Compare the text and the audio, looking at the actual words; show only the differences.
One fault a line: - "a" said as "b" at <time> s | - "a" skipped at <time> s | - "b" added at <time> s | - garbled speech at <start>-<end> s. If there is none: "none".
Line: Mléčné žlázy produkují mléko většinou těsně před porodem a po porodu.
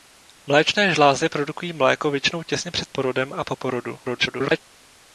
- garbled speech at 4.0-4.6 s